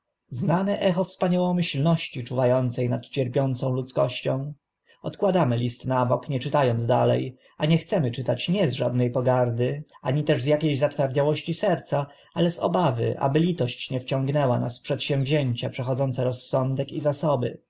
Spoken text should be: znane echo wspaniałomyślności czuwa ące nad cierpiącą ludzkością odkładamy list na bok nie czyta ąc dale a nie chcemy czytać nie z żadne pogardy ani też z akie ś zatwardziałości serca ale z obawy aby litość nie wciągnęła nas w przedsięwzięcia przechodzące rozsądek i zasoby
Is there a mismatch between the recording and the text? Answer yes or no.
no